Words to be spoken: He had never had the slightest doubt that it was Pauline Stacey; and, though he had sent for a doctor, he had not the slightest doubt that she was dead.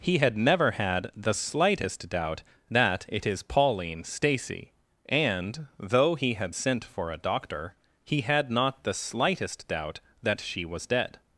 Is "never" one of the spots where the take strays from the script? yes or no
no